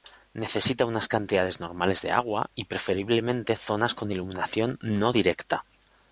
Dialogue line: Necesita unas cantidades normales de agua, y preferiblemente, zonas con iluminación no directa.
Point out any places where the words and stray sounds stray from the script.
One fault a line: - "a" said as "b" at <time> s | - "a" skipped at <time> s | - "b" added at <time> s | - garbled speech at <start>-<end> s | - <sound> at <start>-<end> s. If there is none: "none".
none